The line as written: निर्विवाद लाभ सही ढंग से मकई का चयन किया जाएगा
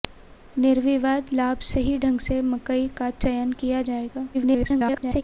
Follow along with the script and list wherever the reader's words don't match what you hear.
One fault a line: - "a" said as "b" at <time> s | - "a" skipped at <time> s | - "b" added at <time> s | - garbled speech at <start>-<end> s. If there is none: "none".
- garbled speech at 4.3-5.2 s